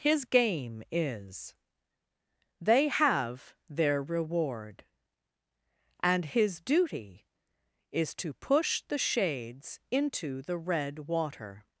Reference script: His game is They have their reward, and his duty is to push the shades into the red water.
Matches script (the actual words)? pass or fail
pass